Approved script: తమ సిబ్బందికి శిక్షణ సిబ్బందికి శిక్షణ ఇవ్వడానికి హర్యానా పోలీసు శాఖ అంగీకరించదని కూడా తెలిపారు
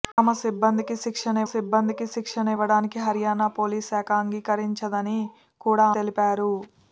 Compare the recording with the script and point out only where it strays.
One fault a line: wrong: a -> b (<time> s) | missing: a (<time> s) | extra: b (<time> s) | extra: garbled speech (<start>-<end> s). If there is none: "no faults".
no faults